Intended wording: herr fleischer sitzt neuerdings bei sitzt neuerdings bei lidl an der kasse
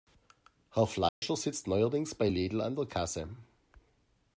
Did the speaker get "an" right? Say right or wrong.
right